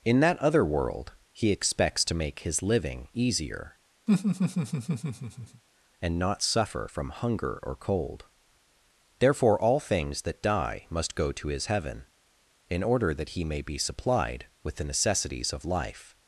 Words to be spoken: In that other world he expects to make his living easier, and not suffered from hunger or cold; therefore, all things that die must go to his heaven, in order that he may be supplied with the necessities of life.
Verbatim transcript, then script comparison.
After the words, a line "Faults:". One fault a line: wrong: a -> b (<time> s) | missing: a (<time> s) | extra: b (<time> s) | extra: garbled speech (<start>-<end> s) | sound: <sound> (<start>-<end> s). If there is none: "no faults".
In that other world he expects to make his living easier, and not suffer from hunger or cold; therefore, all things that die must go to his heaven, in order that he may be supplied with the necessities of life.
Faults:
sound: laugh (4.1-5.6 s)
wrong: suffered -> suffer (6.4 s)